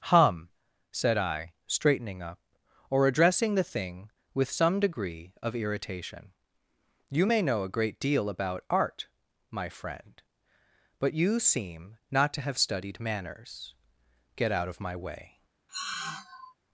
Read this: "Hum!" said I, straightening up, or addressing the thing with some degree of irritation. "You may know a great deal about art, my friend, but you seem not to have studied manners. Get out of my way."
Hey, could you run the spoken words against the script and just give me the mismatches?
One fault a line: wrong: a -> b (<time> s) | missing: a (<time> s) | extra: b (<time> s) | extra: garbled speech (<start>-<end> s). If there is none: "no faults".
no faults